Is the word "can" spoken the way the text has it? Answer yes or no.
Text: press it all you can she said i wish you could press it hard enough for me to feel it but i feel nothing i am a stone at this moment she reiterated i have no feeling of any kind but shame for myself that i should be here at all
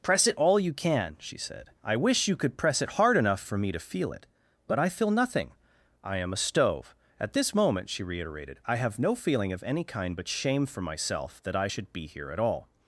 yes